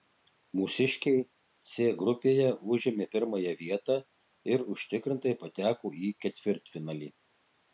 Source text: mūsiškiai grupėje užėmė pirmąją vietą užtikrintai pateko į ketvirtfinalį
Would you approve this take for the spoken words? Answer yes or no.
no